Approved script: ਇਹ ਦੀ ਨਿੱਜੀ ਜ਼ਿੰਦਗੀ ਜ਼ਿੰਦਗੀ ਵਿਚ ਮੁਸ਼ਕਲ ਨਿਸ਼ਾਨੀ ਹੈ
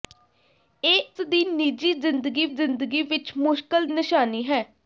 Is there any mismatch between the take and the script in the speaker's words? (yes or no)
no